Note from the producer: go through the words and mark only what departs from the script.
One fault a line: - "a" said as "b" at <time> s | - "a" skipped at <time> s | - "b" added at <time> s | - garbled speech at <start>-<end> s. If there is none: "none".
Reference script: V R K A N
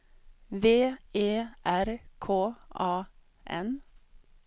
- "E" added at 1.1 s